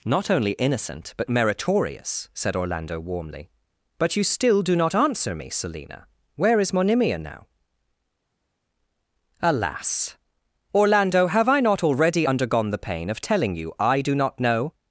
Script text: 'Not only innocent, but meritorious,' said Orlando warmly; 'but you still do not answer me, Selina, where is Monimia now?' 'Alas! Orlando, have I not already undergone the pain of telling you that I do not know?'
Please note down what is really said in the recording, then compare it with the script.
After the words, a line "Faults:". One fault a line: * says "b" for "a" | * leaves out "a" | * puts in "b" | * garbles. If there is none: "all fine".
'Not only innocent, but meritorious,' said Orlando warmly; 'but you still do not answer me, Selina, where is Monimia now?' 'Alas! Orlando, have I not already undergone the pain of telling you I do not know?'
Faults:
* leaves out "that"